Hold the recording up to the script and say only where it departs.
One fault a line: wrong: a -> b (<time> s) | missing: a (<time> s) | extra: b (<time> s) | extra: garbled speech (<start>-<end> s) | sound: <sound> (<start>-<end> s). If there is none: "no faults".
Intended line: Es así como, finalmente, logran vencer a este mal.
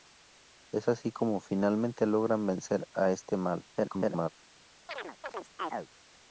extra: garbled speech (3.7-4.3 s)
sound: chirp (4.9-5.9 s)